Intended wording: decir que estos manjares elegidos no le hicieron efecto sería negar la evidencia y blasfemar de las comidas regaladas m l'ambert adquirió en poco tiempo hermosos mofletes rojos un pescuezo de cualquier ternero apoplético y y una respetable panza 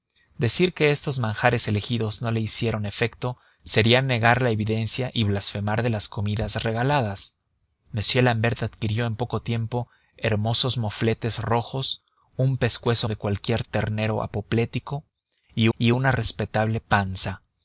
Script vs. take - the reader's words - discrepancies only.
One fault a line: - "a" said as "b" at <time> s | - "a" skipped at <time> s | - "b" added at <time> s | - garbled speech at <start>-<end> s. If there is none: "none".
none